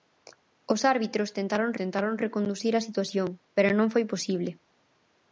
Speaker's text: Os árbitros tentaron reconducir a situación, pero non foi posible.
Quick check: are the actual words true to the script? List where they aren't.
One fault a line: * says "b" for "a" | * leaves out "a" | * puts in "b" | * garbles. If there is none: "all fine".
* puts in "tentaron"